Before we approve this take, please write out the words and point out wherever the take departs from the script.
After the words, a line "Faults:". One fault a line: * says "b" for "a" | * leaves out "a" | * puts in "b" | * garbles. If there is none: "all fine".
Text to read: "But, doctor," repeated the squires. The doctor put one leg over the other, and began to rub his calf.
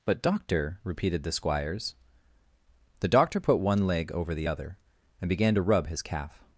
"But, doctor," repeated the squires. The doctor put one leg over the other, and began to rub his calf.
Faults:
all fine